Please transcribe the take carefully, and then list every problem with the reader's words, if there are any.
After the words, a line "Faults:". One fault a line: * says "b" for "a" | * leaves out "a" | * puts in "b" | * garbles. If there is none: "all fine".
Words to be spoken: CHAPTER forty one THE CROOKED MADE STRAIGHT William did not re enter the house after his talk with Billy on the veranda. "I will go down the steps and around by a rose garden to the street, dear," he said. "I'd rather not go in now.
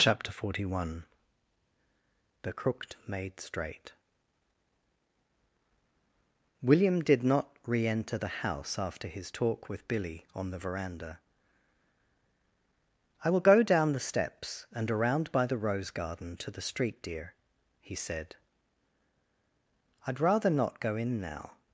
CHAPTER forty one THE CROOKED MADE STRAIGHT William did not re enter the house after his talk with Billy on the veranda. "I will go down the steps and around by the rose garden to the street, dear," he said. "I'd rather not go in now.
Faults:
* says "the" for "a"